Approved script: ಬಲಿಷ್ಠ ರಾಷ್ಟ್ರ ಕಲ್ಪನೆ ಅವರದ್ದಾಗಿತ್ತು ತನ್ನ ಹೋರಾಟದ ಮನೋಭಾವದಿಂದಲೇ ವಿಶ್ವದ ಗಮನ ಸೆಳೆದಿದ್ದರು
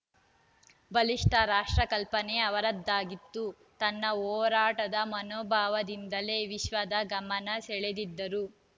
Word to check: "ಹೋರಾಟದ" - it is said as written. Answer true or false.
true